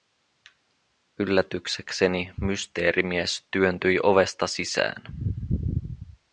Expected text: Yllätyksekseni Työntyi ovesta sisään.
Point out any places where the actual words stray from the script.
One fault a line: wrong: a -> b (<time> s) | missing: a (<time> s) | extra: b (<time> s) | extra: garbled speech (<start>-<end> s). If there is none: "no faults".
extra: Mysteerimies (2.4 s)